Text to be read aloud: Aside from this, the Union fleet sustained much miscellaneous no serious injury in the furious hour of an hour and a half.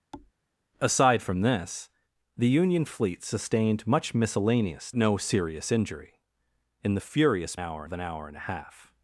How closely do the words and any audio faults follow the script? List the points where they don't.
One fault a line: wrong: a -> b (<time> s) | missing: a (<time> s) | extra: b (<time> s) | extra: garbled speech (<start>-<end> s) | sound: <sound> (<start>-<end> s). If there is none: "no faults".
sound: thud (0.1-0.3 s)